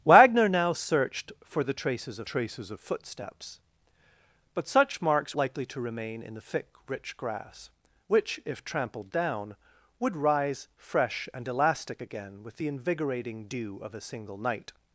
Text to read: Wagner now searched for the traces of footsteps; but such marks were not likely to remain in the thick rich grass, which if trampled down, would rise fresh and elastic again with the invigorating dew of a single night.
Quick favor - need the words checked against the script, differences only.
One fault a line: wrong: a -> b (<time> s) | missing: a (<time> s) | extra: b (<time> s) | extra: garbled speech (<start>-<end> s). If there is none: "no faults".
extra: traces of (2.2 s)
missing: were not (5.3 s)